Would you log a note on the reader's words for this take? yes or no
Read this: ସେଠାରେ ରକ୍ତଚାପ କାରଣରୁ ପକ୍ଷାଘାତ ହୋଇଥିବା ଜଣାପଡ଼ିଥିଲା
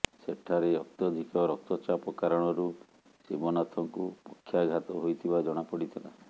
yes